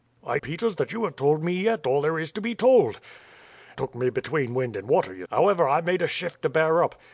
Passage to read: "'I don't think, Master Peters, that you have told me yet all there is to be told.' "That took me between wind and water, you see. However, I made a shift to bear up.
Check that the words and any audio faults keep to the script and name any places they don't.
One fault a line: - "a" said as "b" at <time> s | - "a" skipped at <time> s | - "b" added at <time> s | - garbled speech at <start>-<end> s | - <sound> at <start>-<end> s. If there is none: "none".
- "don't think Master" skipped at 0.4 s
- "That" skipped at 3.0 s
- "see" skipped at 5.2 s